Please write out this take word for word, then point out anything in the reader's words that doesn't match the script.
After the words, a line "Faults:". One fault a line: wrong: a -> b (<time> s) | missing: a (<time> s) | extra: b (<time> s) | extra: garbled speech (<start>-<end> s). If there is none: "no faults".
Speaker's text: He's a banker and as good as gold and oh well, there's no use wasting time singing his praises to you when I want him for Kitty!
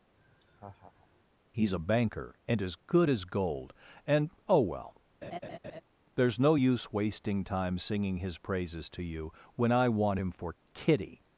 He's a banker and as good as gold and oh well, there's no use wasting time singing his praises to you when I want him for Kitty!
Faults:
no faults